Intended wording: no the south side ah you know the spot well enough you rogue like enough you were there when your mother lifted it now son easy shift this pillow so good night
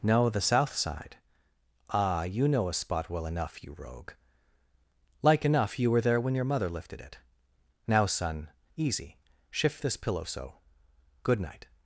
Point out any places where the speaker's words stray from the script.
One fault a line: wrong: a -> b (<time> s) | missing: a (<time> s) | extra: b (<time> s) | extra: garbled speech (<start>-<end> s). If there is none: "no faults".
wrong: the -> a (2.7 s)